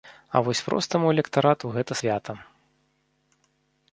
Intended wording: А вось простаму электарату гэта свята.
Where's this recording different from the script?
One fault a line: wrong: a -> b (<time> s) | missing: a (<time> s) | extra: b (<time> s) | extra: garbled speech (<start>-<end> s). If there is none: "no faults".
no faults